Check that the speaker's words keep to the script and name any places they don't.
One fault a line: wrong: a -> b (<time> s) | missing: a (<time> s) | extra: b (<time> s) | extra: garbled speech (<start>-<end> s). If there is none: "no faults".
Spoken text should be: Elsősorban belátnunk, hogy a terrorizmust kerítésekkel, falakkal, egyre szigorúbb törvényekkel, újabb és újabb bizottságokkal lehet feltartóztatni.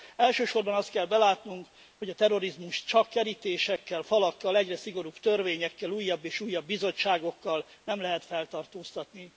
extra: azt kell (0.7 s)
extra: csak (2.9 s)
extra: nem (7.8 s)